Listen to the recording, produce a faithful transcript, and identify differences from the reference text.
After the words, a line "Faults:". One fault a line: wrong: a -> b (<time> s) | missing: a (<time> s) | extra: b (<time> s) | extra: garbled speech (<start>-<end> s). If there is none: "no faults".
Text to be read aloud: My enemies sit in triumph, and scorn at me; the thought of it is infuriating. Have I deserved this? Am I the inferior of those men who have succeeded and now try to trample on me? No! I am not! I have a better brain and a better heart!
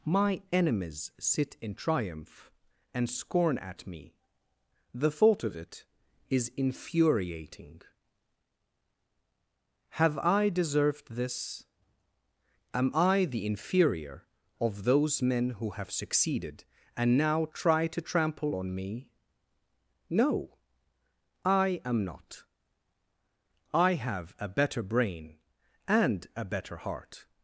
My enemies sit in triumph, and scorn at me; the thought of it is infuriating. Have I deserved this? Am I the inferior of those men who have succeeded and now try to trample on me? No! I am not! I have a better brain and a better heart!
Faults:
no faults